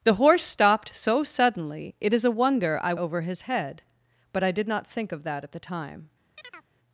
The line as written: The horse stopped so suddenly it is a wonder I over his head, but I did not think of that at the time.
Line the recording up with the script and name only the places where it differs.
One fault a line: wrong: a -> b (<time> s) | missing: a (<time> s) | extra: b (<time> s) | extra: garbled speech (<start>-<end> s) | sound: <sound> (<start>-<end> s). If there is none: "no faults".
sound: chirp (6.4-6.7 s)